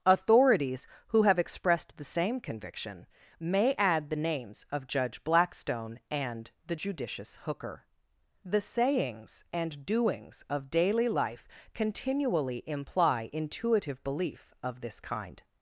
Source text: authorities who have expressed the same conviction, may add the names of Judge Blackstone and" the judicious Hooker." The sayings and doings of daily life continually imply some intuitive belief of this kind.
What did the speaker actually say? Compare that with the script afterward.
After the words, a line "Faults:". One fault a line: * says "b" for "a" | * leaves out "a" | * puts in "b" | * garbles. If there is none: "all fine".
authorities who have expressed the same conviction, may add the names of Judge Blackstone and" the judicious Hooker." The sayings and doings of daily life continually imply intuitive belief of this kind.
Faults:
* leaves out "some"